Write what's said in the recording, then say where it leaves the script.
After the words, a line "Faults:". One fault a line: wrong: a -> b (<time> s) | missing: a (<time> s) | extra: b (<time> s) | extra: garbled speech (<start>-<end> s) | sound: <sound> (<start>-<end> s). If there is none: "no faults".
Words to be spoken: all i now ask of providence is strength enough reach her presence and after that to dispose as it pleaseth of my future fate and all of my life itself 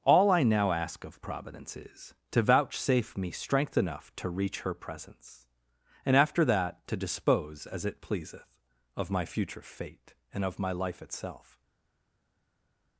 all i now ask of providence is to vouchsafe me strength enough to reach her presence and after that to dispose as it pleaseth of my future fate and of my life itself
Faults:
extra: to vouchsafe me (2.3 s)
extra: to (4.1 s)
missing: all (10.4 s)